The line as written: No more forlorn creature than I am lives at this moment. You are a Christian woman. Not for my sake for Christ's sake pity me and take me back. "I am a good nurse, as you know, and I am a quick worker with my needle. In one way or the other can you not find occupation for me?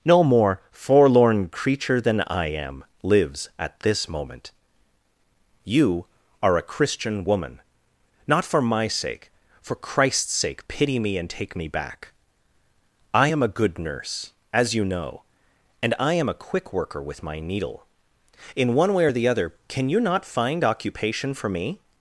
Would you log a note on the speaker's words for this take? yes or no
no